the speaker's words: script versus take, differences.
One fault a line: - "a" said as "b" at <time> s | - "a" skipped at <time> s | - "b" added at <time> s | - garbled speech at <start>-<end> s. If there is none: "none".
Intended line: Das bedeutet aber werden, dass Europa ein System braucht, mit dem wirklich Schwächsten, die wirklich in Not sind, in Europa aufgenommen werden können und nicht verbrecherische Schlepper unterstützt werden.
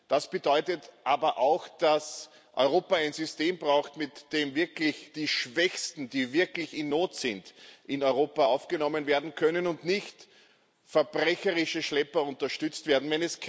- "werden" said as "auch" at 1.4 s
- "die" added at 5.1 s